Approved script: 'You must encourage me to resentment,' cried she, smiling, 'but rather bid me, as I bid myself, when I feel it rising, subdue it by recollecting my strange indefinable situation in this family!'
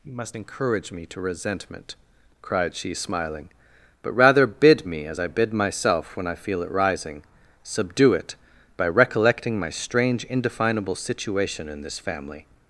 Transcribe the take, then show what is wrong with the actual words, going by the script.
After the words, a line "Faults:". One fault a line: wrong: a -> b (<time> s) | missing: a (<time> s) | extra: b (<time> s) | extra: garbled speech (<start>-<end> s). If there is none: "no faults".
'You must encourage me to resentment,' cried she, smiling, 'but rather bid me, as I bid myself, when I feel it rising, subdue it by recollecting my strange indefinable situation in this family!'
Faults:
no faults